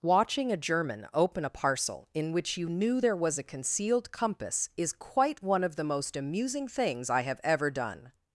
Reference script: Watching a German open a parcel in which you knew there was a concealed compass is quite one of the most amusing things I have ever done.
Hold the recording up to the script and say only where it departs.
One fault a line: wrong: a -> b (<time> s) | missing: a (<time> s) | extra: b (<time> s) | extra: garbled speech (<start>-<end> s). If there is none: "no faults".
no faults